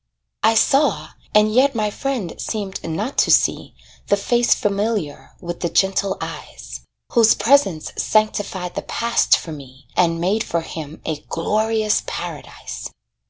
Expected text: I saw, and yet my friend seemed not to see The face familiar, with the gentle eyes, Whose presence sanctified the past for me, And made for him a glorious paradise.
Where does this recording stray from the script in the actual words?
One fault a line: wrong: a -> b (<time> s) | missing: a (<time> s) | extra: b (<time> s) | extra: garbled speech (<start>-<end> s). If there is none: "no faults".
no faults